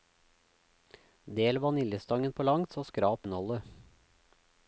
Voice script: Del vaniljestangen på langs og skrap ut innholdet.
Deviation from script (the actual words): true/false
true